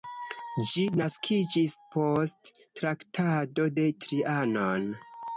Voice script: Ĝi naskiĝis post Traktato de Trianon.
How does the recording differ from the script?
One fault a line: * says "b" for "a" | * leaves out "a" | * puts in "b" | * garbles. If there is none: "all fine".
all fine